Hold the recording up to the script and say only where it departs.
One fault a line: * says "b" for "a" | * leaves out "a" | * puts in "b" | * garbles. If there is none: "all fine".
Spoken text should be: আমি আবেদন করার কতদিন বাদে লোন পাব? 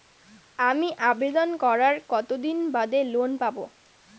all fine